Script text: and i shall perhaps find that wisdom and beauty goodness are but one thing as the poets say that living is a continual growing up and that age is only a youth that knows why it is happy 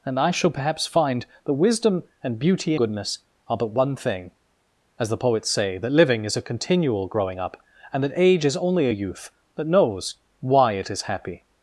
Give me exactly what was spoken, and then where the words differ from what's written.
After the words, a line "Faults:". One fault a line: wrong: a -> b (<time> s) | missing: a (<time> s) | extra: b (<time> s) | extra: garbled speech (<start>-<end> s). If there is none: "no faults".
and i shall perhaps find that wisdom and beauty goodness are but one thing as the poets say that living is a continual growing up and that age is only a youth that knows why it is happy
Faults:
no faults